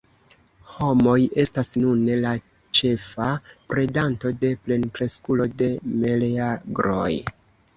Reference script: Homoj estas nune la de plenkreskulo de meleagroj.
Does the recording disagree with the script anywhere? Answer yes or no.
yes